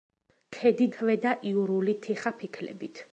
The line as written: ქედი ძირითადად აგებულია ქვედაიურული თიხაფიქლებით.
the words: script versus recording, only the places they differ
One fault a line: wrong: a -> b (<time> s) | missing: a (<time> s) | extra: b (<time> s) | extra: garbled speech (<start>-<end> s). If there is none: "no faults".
missing: ძირითადად აგებულია (0.8 s)